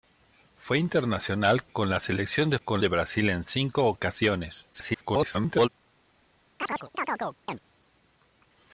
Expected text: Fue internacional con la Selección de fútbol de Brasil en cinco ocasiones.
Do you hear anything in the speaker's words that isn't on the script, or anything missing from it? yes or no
yes